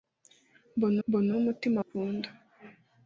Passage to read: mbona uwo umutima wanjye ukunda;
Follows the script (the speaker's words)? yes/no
no